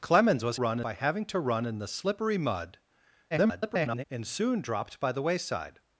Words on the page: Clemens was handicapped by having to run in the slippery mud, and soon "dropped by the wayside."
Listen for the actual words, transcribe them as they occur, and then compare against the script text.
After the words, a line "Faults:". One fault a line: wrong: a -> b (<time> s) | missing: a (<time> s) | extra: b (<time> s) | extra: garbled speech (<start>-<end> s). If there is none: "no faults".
Clemens was run by having to run in the slippery mud, [garbled] and soon "dropped by the wayside."
Faults:
wrong: handicapped -> run (0.5 s)
extra: garbled speech (3.3-4.1 s)